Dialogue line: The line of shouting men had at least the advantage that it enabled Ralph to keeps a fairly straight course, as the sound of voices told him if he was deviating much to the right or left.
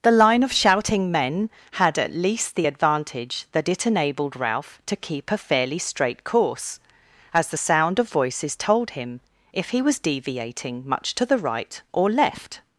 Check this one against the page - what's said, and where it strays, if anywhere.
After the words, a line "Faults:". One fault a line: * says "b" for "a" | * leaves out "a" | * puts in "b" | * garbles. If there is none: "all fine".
The line of shouting men had at least the advantage that it enabled Ralph to keep a fairly straight course, as the sound of voices told him if he was deviating much to the right or left.
Faults:
* says "keep" for "keeps"